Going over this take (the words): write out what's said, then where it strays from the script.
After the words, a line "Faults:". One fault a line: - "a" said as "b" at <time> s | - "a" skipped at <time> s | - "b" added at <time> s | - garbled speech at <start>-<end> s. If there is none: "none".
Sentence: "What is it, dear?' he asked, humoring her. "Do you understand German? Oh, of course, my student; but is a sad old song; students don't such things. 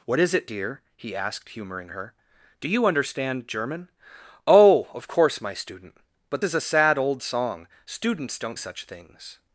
"What is it, dear?' he asked, humoring her. "Do you understand German? Oh, of course, my student; but is a sad old song; students don't such things.
Faults:
none